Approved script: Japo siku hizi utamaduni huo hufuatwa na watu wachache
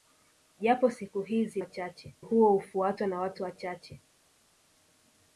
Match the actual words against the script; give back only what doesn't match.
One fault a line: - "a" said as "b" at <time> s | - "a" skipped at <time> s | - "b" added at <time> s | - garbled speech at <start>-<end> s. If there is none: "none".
- "utamaduni" said as "wachache" at 1.6 s